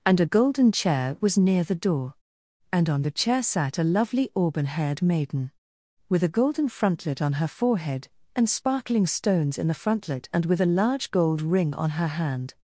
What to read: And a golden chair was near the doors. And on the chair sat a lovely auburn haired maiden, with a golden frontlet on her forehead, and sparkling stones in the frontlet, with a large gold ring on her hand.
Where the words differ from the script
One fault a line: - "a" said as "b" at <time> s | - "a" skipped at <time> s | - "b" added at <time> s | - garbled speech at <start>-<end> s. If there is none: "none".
- "doors" said as "door" at 1.7 s
- "and" added at 10.3 s